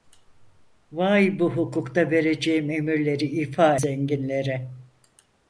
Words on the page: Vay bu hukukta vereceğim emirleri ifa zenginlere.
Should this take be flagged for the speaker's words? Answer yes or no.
no